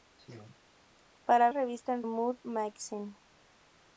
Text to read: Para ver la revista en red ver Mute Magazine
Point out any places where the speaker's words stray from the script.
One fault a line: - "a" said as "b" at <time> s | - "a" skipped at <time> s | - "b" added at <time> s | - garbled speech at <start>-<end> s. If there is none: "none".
- "ver la" skipped at 1.5 s
- "red ver" skipped at 2.1 s